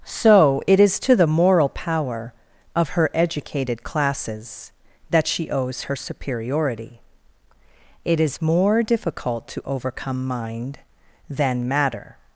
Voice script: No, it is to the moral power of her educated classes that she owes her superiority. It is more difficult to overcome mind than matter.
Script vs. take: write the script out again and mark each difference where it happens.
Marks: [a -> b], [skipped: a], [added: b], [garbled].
[No, -> So] it is to the moral power of her educated classes that she owes her superiority. It is more difficult to overcome mind than matter.